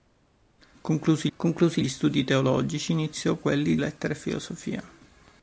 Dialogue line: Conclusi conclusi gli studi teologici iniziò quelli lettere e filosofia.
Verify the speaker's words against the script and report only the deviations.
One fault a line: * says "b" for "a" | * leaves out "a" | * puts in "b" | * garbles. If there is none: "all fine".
all fine